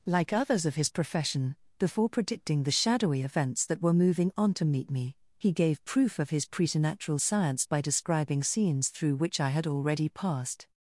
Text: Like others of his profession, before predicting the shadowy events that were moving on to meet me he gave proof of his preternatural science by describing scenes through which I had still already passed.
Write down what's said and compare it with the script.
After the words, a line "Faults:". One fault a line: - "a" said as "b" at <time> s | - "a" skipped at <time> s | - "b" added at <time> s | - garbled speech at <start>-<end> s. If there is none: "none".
Like others of his profession, before predicting the shadowy events that were moving on to meet me he gave proof of his preternatural science by describing scenes through which I had already passed.
Faults:
- "still" skipped at 9.7 s